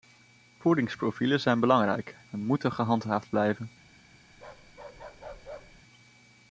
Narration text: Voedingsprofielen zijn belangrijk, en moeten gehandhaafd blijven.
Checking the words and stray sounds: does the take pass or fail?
fail